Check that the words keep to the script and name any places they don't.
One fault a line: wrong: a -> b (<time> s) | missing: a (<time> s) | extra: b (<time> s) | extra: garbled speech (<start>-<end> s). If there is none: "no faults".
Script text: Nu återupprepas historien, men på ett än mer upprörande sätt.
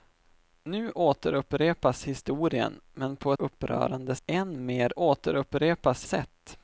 wrong: ett -> upprörande (3.4 s)
wrong: upprörande -> återupprepas (5.0 s)